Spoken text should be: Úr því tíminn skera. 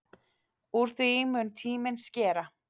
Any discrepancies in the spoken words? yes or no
yes